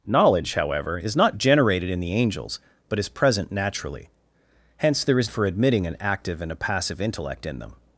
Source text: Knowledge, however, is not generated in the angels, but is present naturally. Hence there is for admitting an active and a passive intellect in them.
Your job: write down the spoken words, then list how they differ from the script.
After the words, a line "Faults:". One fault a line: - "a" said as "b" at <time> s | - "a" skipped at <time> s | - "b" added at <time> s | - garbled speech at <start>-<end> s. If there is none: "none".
Knowledge, however, is not generated in the angels, but is present naturally. Hence there is for admitting an active and a passive intellect in them.
Faults:
none